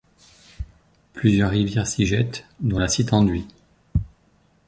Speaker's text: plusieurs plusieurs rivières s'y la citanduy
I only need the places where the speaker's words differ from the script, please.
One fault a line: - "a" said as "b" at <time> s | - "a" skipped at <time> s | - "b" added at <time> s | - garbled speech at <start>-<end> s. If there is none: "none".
- "plusieurs" skipped at 1.5 s
- "jettent dont" added at 2.0 s